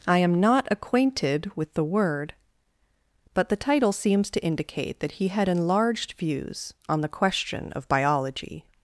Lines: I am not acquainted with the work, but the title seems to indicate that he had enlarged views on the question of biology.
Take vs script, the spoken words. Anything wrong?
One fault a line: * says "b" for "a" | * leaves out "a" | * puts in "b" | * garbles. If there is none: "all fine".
* says "word" for "work"